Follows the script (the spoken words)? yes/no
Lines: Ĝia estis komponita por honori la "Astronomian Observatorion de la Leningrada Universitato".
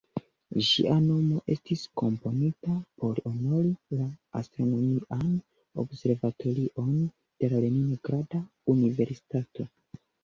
no